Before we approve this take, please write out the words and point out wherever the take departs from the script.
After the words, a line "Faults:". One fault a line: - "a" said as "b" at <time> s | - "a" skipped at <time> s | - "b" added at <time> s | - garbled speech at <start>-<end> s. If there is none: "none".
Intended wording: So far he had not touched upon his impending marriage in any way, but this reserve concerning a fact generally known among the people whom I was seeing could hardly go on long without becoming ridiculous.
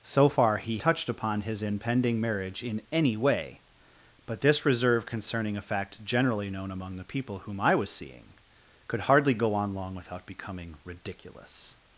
So far he touched upon his impending marriage in any way, but this reserve concerning a fact generally known among the people whom I was seeing could hardly go on long without becoming ridiculous.
Faults:
- "had not" skipped at 0.8 s